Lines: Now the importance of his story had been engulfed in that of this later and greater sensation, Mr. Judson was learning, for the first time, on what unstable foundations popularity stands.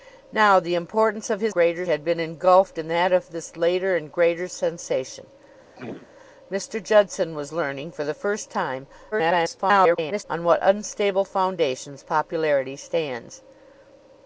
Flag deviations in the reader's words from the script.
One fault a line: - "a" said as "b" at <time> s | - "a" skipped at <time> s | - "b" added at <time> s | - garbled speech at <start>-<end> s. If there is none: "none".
- "story" said as "greater" at 1.5 s
- garbled speech at 9.1-10.2 s